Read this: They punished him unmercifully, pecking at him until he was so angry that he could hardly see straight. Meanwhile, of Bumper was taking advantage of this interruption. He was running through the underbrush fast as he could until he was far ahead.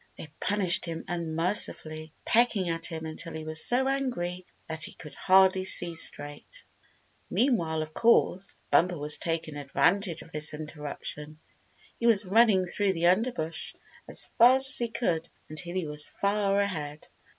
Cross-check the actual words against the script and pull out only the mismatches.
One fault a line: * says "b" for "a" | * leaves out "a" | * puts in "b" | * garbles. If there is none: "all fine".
* puts in "course"
* puts in "as"